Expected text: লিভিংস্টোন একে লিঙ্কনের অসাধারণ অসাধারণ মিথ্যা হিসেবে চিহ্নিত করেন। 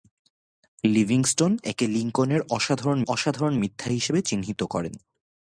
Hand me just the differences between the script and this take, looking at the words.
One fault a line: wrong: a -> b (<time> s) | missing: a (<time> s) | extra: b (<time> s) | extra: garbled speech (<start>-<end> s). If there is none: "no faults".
no faults